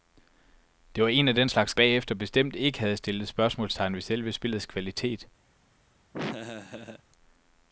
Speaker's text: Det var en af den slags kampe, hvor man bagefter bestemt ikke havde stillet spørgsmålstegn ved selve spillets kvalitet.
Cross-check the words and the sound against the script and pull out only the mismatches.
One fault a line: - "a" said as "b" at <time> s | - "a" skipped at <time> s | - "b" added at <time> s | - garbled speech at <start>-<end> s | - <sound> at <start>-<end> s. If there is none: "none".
- "kampe hvor man" skipped at 1.7 s
- laugh at 6.1-7.0 s